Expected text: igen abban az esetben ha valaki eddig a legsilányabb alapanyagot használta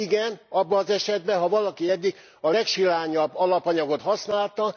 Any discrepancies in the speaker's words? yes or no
no